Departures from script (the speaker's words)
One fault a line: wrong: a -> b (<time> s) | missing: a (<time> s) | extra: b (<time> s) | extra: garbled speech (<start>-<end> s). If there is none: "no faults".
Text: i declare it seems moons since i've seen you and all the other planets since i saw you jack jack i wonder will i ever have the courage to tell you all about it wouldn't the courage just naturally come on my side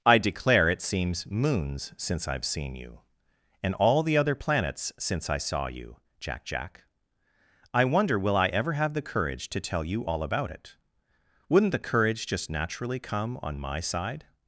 no faults